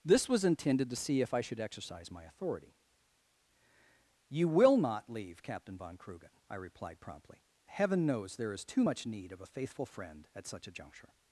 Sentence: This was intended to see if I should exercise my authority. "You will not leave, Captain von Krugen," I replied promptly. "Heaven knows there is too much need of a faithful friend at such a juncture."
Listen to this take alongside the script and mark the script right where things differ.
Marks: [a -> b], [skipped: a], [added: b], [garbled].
This was intended to see if I should exercise my authority. "You will not leave, Captain von Krugen," I replied promptly. "Heaven knows there is too much need of a faithful friend at such a juncture."